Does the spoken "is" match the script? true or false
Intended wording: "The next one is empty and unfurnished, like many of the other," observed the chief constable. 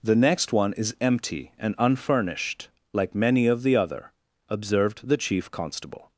true